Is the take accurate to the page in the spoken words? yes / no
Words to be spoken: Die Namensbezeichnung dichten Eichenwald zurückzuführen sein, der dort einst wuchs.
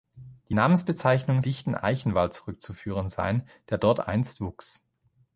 yes